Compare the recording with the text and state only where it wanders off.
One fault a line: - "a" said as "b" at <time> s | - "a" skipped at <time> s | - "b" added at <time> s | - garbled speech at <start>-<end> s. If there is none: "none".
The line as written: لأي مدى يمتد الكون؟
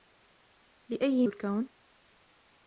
- "مدى يمتد" skipped at 1.3 s